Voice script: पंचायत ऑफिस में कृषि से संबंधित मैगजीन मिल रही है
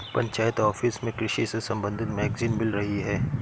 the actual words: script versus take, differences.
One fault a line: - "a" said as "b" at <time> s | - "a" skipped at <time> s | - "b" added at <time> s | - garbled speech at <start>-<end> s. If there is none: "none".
none